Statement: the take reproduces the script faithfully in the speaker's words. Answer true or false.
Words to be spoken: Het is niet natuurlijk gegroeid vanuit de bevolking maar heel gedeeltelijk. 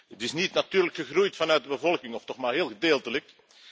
false